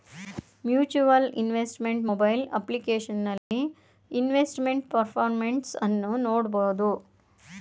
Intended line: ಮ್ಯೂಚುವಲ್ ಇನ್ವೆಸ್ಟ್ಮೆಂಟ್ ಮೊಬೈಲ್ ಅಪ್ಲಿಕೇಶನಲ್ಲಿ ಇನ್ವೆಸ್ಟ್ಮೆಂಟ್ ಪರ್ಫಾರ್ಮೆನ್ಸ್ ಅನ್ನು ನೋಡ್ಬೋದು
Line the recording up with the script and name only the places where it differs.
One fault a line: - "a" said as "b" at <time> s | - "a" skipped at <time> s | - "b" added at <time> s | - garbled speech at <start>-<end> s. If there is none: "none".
none